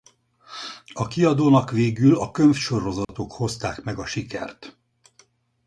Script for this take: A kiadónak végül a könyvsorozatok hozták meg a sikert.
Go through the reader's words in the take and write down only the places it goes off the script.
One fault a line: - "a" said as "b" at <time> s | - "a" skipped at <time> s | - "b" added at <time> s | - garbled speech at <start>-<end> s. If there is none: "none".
none